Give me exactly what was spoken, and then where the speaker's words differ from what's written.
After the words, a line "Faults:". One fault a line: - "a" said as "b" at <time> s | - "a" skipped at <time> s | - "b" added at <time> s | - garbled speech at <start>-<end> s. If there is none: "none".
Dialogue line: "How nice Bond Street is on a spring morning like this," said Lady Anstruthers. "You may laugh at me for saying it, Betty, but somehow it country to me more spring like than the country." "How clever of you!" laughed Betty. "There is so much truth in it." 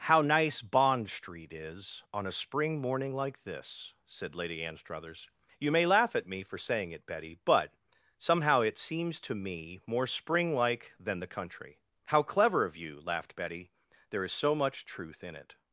"How nice Bond Street is on a spring morning like this," said Lady Anstruthers. "You may laugh at me for saying it, Betty, but somehow it seems to me more spring like than the country." "How clever of you!" laughed Betty. "There is so much truth in it."
Faults:
- "country" said as "seems" at 8.8 s